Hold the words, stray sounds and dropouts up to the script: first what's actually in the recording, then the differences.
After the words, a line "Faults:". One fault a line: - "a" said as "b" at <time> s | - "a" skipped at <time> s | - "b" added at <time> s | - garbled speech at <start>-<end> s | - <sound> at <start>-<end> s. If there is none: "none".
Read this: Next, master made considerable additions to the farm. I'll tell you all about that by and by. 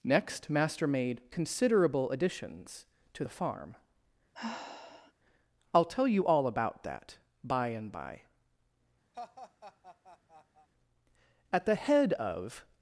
Next, master made considerable additions to the farm. I'll tell you all about that by and by. At the head of
Faults:
- sigh at 4.3-5.1 s
- laugh at 9.1-10.7 s
- "At the head of" added at 11.5 s